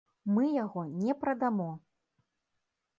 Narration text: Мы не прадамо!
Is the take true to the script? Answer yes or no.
no